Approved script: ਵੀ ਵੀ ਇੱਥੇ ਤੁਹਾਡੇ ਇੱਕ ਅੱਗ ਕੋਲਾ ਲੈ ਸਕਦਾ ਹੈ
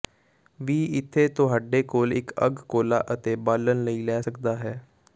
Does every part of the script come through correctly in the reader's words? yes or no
no